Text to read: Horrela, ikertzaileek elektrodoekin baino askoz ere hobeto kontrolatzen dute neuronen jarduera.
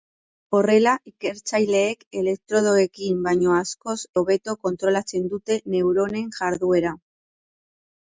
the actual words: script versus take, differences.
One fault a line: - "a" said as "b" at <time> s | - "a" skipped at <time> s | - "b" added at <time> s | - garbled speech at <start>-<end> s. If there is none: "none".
- "ere" skipped at 4.0 s